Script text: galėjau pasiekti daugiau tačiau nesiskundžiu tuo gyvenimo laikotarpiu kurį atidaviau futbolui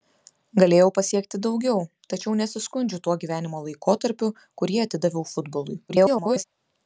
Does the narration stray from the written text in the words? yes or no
yes